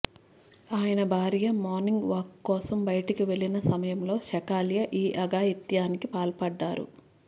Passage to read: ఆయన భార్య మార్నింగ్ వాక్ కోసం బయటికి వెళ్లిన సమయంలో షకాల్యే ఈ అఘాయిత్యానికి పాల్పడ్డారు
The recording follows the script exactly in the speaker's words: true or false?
true